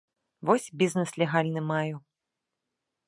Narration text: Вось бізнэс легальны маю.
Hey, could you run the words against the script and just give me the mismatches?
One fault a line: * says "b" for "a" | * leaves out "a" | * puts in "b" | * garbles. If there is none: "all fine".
all fine